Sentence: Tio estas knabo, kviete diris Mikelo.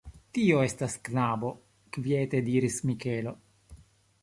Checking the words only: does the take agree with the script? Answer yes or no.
yes